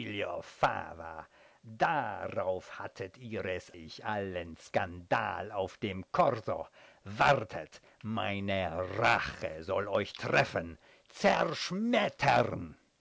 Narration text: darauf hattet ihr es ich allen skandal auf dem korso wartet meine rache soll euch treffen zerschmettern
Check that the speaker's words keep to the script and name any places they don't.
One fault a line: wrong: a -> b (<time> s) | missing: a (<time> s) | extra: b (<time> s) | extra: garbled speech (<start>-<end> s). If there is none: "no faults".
no faults